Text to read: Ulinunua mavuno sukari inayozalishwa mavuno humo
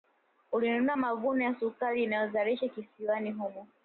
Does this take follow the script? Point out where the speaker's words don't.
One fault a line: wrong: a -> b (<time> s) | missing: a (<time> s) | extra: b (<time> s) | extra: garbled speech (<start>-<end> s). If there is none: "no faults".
extra: ya (1.4 s)
wrong: mavuno -> kisiwani (2.7 s)